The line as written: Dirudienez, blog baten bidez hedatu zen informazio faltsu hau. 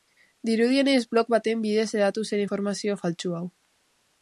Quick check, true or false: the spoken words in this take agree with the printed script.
true